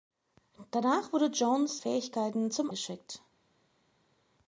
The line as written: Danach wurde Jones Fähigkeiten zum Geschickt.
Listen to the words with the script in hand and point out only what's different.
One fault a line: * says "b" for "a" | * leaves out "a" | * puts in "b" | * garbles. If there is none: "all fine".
all fine